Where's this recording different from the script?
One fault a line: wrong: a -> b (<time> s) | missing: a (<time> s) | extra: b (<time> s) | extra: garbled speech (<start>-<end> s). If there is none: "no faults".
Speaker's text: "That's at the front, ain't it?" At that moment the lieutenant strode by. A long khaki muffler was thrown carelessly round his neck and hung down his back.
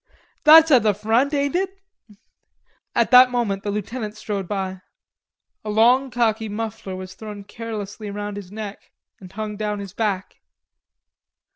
no faults